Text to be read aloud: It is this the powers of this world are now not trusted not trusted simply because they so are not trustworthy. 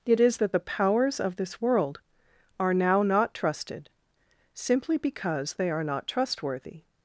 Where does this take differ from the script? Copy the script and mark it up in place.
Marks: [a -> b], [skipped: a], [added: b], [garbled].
It is [this -> that] the powers of this world are now not trusted [skipped: not trusted] simply because they [skipped: so] are not trustworthy.